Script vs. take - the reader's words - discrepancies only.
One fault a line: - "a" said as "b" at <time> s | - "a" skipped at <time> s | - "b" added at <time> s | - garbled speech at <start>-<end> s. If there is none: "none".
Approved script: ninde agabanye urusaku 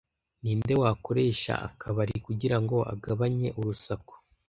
- "wakoresha akabari kugirango" added at 0.8 s